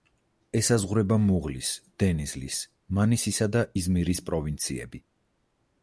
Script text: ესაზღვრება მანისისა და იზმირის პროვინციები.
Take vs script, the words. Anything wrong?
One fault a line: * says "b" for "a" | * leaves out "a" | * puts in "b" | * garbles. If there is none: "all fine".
* puts in "მუღლის დენიზლის"